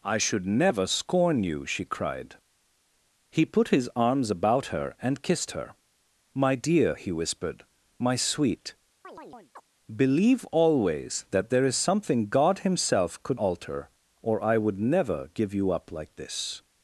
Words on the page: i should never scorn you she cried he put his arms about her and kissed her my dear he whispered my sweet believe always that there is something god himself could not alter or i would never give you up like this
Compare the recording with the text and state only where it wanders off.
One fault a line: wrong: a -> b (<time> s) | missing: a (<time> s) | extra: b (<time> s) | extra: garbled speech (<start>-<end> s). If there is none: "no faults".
missing: not (13.4 s)